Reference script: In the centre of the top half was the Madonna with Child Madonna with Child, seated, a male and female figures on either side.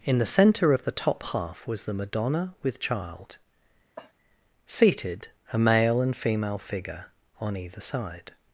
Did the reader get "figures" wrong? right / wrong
wrong